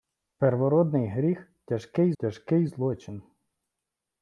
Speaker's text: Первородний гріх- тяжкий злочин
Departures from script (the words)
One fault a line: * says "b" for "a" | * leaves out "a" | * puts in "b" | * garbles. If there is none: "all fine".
* puts in "тяжкий"